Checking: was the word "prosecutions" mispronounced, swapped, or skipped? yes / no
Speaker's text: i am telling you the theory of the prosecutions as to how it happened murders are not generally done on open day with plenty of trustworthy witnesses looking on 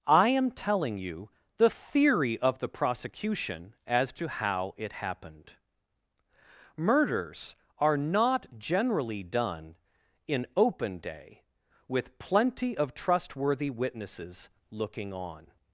yes